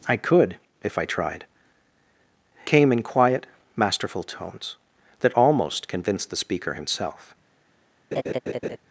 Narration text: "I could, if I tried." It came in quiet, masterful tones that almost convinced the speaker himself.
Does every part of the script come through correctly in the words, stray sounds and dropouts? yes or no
no